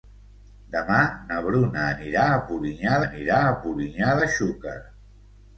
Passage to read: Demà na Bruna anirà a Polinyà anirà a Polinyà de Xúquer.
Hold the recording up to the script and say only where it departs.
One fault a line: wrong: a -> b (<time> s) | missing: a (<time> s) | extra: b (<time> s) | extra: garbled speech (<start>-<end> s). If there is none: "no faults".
no faults